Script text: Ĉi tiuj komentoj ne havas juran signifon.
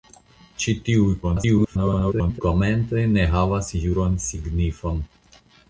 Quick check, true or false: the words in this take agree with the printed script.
false